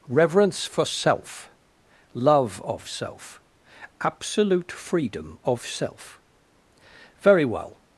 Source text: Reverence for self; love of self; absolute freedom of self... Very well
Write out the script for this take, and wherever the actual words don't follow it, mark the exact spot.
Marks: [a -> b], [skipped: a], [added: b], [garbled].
Reverence for self; love of self; absolute freedom of self... Very well